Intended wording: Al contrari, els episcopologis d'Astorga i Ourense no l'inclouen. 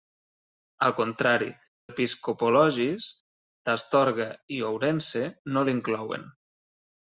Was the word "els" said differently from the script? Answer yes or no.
yes